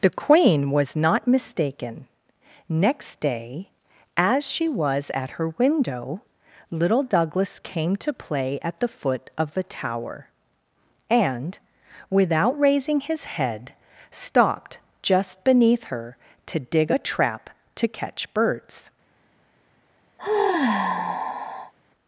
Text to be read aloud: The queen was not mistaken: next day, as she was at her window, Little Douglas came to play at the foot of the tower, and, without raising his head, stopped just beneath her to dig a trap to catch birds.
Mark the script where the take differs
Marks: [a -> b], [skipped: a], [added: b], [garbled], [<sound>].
The queen was not mistaken: next day, as she was at her window, Little Douglas came to play at the foot of the tower, and, without raising his head, stopped just beneath her to dig a trap to catch birds. [sigh]